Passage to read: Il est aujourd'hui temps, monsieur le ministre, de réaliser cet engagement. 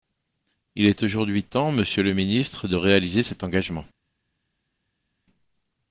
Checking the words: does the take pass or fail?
pass